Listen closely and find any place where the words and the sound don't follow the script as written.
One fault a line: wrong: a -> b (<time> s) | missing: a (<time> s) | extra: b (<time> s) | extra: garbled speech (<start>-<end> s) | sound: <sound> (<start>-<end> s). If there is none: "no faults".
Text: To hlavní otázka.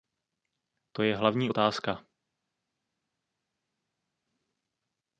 extra: je (1.0 s)